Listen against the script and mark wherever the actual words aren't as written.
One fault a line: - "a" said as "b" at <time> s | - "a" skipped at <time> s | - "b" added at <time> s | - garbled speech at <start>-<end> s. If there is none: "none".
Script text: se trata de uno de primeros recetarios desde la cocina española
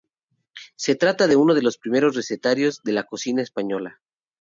- "los" added at 1.6 s
- "desde" said as "de" at 2.8 s